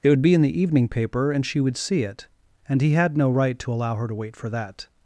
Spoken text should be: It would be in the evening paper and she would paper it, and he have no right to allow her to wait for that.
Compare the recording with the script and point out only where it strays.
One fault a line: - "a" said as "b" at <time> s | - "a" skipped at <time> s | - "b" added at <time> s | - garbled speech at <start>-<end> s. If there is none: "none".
- "paper" said as "see" at 1.8 s
- "have" said as "had" at 2.9 s